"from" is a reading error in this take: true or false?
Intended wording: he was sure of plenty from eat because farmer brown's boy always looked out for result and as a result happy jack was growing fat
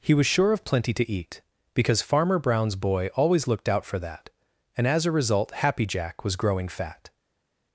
true